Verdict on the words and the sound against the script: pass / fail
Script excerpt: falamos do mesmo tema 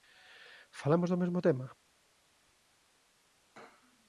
pass